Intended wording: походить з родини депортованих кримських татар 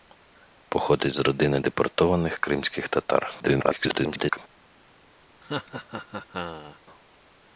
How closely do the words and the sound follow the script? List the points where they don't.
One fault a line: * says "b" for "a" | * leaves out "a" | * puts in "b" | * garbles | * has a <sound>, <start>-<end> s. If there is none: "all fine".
* garbles
* has a laugh, 5.4-6.8 s